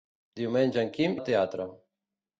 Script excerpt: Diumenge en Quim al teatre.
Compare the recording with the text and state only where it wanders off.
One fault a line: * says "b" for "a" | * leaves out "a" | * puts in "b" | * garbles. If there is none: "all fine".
all fine